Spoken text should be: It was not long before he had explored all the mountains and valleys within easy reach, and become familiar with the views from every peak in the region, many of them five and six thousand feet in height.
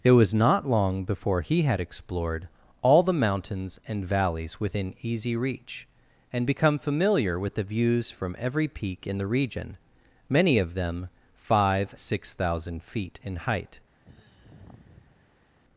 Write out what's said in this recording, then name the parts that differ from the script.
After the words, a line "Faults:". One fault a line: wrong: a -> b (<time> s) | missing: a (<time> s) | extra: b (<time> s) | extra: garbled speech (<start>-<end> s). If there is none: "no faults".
It was not long before he had explored all the mountains and valleys within easy reach, and become familiar with the views from every peak in the region, many of them five six thousand feet in height.
Faults:
missing: and (11.9 s)